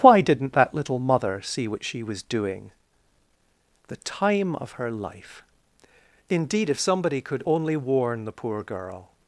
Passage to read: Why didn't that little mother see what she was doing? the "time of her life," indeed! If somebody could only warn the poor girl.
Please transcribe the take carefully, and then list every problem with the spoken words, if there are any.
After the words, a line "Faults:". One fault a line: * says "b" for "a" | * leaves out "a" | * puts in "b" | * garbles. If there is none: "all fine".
Why didn't that little mother see what she was doing? the "time of her life," indeed! If somebody could only warn the poor girl.
Faults:
all fine